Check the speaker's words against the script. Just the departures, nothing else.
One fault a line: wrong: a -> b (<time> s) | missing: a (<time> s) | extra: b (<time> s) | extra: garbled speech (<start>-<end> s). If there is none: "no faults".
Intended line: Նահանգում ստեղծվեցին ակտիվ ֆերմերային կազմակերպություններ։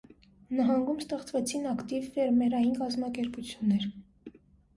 no faults